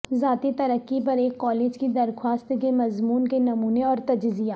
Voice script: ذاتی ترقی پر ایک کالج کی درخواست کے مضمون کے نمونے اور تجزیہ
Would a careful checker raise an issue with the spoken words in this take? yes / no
no